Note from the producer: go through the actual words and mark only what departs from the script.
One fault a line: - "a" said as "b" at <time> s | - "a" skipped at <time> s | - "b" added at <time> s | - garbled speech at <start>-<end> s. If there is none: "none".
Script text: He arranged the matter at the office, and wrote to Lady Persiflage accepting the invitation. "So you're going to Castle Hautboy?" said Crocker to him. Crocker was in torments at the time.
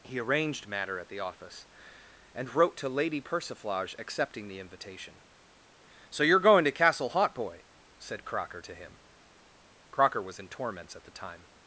- "the" skipped at 0.7 s